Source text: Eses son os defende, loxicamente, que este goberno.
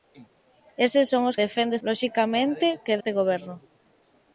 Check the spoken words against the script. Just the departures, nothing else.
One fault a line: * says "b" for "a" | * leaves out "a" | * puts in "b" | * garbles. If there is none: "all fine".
all fine